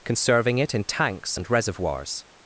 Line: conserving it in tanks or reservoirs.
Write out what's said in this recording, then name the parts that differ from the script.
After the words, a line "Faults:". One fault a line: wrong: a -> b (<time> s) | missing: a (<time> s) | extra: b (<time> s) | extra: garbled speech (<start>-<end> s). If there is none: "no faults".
conserving it in tanks and reservoirs.
Faults:
wrong: or -> and (1.3 s)